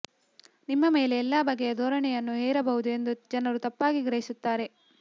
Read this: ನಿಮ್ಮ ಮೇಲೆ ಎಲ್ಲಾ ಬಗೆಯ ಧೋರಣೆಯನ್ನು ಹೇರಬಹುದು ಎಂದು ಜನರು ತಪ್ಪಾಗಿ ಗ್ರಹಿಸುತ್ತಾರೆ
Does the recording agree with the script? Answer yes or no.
yes